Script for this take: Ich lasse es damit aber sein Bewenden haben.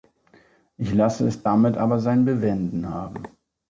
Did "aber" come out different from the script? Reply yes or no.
no